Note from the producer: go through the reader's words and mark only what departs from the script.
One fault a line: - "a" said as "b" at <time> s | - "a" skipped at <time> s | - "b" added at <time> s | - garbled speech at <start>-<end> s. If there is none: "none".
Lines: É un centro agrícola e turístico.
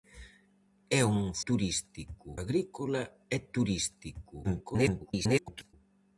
- "centro" said as "turístico" at 1.5 s
- garbled speech at 4.4-5.7 s